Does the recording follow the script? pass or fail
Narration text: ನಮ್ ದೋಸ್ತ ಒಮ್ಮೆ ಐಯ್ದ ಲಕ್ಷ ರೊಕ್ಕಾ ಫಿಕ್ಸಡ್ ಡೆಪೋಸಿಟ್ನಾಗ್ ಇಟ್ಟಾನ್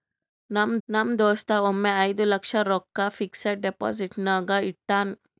fail